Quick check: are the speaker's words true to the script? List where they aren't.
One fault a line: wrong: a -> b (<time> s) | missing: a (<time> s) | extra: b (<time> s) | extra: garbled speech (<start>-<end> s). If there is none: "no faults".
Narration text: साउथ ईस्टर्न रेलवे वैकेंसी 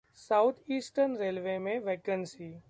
extra: में (1.6 s)